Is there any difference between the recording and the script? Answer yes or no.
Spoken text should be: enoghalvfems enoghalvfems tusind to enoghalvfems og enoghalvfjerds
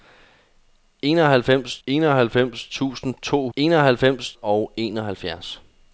no